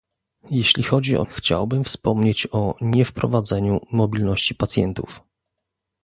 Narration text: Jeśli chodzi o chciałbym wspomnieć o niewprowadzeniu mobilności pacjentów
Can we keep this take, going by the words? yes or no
yes